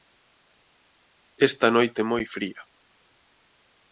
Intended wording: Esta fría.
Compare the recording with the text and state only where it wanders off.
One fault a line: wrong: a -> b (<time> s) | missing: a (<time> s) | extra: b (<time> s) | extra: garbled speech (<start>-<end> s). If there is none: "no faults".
extra: noite moi (1.8 s)